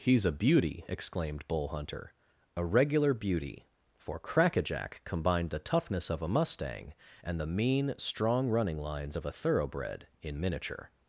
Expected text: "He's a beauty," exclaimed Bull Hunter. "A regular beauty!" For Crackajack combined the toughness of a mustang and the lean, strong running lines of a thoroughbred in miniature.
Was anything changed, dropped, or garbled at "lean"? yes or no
yes